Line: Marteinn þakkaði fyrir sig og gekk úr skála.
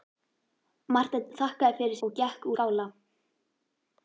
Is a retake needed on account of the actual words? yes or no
yes